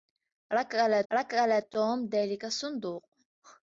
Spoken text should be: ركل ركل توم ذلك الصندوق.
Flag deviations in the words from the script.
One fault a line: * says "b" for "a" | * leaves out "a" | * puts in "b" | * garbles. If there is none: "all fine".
all fine